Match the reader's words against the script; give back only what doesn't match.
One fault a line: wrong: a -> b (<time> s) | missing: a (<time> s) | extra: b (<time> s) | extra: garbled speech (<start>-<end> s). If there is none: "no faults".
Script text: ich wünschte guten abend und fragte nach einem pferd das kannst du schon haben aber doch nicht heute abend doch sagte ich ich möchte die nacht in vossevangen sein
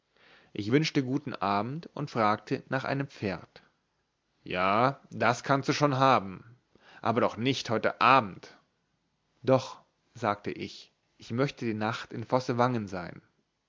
extra: ja (4.4 s)